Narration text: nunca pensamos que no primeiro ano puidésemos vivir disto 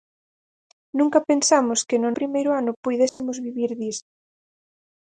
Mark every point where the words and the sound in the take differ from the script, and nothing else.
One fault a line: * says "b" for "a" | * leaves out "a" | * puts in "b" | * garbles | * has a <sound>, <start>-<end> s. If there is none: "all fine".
* has a dropout, 3.1-3.2 s